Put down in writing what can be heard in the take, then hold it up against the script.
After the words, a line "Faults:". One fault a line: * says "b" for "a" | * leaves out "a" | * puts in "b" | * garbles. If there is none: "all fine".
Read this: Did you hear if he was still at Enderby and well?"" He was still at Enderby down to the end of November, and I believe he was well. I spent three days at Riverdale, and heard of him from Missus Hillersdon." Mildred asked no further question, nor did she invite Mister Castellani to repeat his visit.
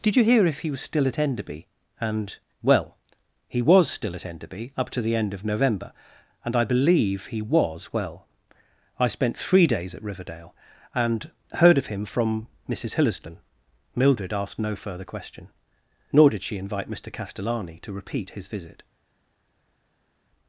Did you hear if he was still at Enderby and well?"" He was still at Enderby up to the end of November, and I believe he was well. I spent three days at Riverdale, and heard of him from Missus Hillersdon." Mildred asked no further question, nor did she invite Mister Castellani to repeat his visit.
Faults:
* says "up" for "down"